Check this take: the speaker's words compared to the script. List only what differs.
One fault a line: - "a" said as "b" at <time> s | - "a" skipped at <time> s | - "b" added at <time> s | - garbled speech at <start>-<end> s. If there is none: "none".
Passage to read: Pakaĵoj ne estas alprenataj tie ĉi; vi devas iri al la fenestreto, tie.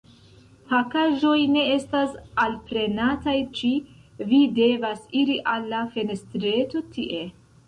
- "tie" skipped at 3.4 s